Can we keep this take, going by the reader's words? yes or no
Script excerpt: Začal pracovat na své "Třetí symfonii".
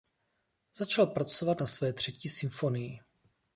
yes